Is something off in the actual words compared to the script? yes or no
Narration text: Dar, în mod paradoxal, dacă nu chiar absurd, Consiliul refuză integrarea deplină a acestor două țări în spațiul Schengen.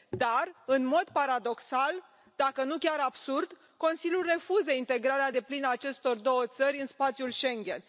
no